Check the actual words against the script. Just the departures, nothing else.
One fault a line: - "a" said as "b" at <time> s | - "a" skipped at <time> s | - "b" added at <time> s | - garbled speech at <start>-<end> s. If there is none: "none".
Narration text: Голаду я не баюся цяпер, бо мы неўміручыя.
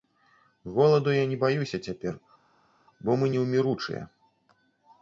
none